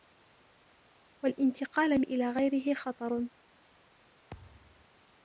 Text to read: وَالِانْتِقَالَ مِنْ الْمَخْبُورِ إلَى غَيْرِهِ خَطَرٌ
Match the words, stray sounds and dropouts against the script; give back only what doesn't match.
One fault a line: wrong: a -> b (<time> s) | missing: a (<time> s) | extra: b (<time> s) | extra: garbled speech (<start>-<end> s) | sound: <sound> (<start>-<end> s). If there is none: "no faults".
missing: مِنْ الْمَخْبُورِ (2.0 s)
sound: thud (4.3-4.9 s)